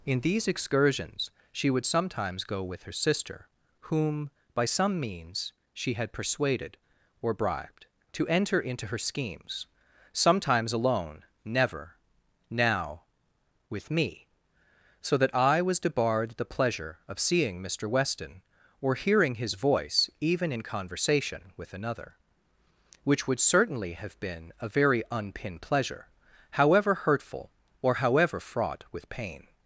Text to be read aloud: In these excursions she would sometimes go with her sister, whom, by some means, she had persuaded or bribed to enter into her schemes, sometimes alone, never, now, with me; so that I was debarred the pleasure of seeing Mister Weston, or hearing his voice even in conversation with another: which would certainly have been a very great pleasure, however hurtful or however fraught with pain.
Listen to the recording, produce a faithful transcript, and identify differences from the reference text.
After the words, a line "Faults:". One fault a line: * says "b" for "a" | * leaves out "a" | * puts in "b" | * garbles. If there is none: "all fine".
In these excursions she would sometimes go with her sister, whom, by some means, she had persuaded or bribed to enter into her schemes, sometimes alone, never, now, with me; so that I was debarred the pleasure of seeing Mister Weston, or hearing his voice even in conversation with another: which would certainly have been a very unpin pleasure, however hurtful or however fraught with pain.
Faults:
* says "unpin" for "great"